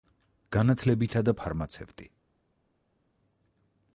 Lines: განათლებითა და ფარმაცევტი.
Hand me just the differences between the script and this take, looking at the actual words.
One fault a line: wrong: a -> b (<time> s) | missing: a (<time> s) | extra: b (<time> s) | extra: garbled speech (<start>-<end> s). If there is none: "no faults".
no faults